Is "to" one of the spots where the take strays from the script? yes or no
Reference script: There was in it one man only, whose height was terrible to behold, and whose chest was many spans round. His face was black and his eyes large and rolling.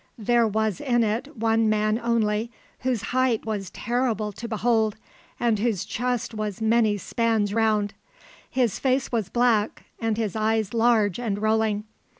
no